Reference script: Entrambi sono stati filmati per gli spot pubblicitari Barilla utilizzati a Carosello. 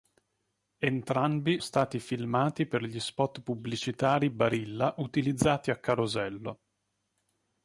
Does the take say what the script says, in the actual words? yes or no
no